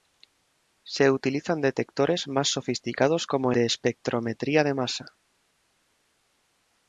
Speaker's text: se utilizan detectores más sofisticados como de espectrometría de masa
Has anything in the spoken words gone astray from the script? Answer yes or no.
no